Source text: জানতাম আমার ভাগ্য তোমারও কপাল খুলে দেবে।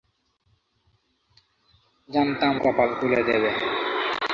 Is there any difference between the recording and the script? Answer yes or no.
yes